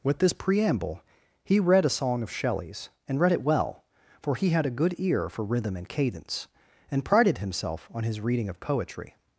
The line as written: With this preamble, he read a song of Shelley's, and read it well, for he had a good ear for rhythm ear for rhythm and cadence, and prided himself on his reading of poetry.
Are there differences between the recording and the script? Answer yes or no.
yes